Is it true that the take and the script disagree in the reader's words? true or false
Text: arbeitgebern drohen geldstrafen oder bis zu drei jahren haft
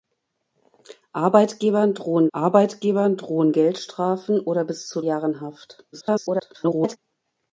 true